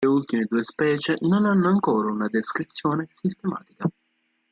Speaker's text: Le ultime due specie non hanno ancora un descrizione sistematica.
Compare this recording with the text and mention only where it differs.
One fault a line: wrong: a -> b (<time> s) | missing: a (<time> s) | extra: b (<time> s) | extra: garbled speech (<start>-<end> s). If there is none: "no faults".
wrong: un -> una (2.1 s)